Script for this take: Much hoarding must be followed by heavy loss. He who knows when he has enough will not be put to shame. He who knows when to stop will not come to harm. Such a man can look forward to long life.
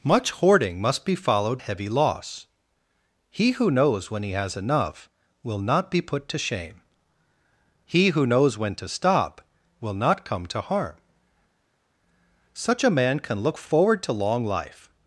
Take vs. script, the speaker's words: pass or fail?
fail